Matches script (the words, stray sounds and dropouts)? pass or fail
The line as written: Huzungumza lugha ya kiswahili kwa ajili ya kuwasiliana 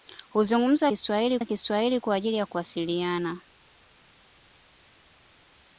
fail